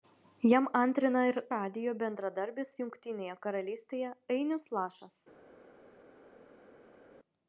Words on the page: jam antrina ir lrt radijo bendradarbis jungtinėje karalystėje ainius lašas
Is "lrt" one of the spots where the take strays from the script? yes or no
yes